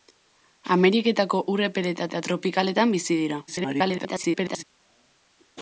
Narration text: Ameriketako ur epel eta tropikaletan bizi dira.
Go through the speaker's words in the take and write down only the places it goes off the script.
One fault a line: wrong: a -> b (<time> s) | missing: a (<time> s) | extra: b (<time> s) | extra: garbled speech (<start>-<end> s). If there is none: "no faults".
extra: eta (2.0 s)
extra: garbled speech (3.5-4.6 s)